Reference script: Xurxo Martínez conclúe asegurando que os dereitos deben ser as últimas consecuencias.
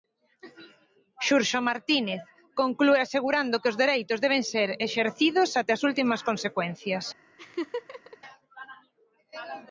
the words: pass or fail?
fail